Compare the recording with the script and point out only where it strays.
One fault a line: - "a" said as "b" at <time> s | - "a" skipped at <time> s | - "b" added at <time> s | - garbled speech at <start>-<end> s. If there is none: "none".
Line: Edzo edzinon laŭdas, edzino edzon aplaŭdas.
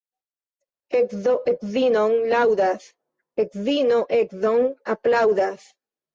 none